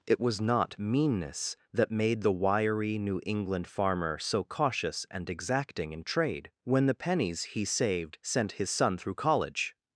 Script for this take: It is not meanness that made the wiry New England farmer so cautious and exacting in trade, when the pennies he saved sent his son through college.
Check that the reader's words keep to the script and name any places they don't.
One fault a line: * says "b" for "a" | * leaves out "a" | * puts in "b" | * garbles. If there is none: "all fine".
* says "was" for "is"